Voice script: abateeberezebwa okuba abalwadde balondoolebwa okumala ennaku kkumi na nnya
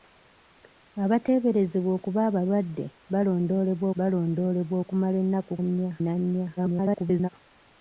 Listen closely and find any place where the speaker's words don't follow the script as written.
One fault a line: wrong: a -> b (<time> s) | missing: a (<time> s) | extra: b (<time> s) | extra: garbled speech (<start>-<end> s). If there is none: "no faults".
extra: balondoolebwa (4.0 s)
wrong: kkumi -> nnya (5.6 s)
extra: garbled speech (6.6-7.3 s)